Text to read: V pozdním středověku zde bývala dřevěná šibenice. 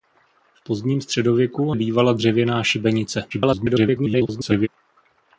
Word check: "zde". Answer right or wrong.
wrong